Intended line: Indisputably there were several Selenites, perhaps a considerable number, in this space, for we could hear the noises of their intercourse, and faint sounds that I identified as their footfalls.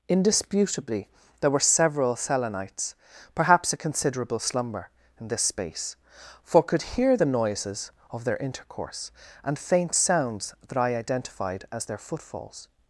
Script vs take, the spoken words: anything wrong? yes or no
yes